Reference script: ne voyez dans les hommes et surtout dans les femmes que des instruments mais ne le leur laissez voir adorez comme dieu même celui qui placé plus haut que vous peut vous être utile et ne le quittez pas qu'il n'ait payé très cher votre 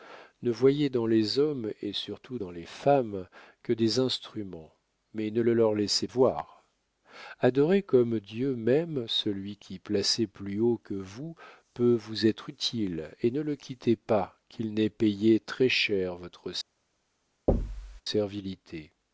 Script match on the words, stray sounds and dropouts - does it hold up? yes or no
no